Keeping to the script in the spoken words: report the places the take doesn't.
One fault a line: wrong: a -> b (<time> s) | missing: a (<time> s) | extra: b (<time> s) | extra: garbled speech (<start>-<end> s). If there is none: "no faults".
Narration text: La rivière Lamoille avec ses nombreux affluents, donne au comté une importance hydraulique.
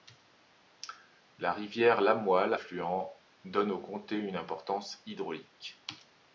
missing: avec ses nombreux (2.5 s)